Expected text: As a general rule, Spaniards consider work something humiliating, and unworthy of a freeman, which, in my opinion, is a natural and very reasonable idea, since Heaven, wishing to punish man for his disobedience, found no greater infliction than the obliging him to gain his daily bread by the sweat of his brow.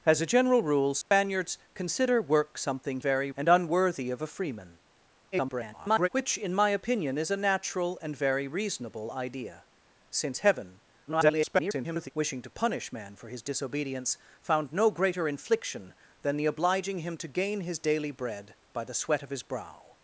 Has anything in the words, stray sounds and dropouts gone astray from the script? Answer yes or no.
yes